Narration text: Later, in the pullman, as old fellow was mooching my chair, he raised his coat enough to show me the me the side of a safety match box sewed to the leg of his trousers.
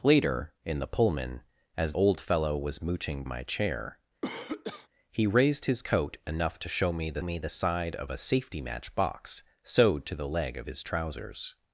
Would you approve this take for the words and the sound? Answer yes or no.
no